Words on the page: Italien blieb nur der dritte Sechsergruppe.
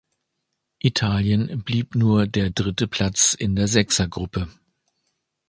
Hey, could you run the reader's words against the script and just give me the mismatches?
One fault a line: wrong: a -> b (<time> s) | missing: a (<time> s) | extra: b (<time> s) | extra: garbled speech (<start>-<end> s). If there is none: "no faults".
extra: Platz in der (2.9 s)